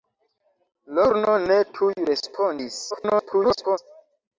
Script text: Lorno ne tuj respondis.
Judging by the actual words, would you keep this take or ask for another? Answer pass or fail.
fail